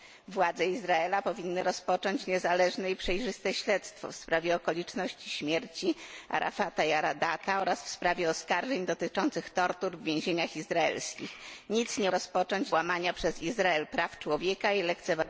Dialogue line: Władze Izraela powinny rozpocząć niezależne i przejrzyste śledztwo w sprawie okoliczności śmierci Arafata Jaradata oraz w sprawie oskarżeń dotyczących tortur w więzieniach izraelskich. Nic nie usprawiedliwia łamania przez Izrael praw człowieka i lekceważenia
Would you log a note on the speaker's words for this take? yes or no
yes